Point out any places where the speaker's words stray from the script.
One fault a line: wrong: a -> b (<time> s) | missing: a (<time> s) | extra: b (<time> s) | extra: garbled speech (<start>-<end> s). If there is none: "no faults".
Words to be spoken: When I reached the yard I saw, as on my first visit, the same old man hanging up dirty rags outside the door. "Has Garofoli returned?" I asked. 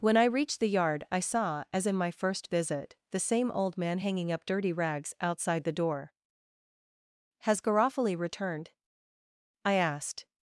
wrong: on -> in (1.9 s)